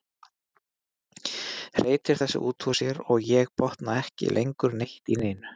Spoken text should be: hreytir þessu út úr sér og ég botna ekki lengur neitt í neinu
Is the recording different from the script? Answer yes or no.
no